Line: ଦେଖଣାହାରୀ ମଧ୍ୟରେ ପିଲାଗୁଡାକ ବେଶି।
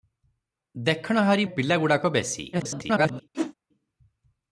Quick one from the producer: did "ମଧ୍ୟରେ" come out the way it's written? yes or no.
no